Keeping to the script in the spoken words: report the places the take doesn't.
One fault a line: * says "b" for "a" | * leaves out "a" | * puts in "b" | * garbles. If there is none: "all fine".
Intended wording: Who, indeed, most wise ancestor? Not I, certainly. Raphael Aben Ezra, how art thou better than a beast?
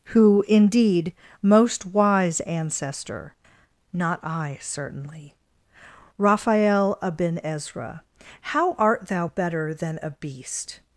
all fine